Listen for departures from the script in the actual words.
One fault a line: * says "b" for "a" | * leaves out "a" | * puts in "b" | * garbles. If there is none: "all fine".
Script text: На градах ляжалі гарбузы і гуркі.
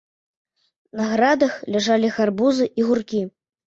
all fine